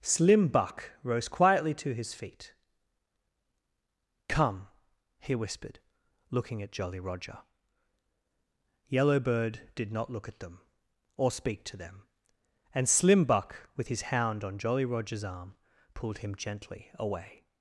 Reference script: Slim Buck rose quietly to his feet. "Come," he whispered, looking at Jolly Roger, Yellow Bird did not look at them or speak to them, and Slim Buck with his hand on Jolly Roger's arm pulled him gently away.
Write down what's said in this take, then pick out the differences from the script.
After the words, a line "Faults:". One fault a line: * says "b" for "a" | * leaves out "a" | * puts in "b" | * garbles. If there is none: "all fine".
Slim Buck rose quietly to his feet. "Come," he whispered, looking at Jolly Roger, Yellow Bird did not look at them or speak to them, and Slim Buck with his hound on Jolly Roger's arm pulled him gently away.
Faults:
* says "hound" for "hand"